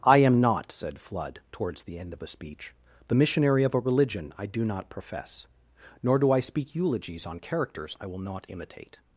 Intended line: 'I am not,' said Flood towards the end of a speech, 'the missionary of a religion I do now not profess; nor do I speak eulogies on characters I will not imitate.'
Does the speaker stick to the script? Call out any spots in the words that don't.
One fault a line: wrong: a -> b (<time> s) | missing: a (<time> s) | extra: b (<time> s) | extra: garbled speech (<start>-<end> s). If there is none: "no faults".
missing: now (4.6 s)